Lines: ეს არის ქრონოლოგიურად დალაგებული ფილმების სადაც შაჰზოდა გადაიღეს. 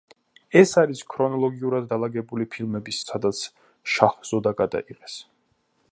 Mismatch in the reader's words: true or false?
false